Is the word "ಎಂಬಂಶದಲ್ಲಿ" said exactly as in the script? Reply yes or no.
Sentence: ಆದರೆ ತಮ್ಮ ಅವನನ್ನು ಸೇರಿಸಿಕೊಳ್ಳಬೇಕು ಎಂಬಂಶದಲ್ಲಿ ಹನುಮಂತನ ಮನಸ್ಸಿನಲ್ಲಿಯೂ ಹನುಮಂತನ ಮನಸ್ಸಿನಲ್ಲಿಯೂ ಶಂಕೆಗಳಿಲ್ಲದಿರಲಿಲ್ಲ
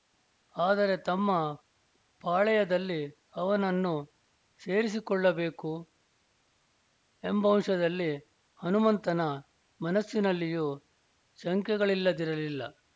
yes